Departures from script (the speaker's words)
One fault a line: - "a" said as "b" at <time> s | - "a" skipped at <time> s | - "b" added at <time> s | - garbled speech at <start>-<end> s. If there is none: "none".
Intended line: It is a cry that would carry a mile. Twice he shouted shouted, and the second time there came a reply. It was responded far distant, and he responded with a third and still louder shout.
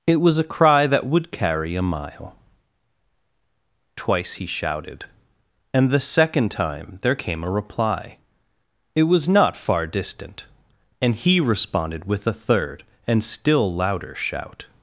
- "is" said as "was" at 0.2 s
- "shouted" skipped at 5.0 s
- "responded" said as "not" at 9.3 s